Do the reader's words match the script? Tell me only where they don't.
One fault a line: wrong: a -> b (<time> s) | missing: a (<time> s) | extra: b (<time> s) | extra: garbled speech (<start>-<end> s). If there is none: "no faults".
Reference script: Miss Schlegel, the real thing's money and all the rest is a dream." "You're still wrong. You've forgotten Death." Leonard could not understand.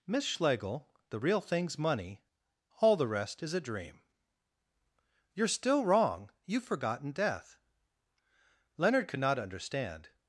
missing: and (2.2 s)